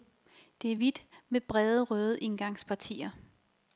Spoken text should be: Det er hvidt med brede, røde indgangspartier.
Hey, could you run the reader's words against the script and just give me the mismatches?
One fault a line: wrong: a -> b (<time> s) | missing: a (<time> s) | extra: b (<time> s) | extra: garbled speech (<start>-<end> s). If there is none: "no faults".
no faults